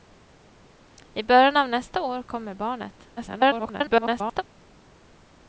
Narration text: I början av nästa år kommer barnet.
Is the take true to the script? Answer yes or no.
no